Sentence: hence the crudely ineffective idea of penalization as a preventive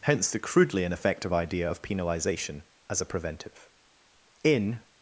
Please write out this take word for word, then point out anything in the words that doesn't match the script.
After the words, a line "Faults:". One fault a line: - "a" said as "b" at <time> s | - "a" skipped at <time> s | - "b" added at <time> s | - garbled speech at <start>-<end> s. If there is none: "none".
hence the crudely ineffective idea of penalization as a preventive in
Faults:
- "in" added at 4.4 s